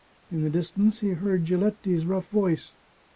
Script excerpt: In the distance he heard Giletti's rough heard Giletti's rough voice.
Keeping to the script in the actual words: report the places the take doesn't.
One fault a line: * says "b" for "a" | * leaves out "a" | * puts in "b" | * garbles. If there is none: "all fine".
* leaves out "heard Giletti's rough"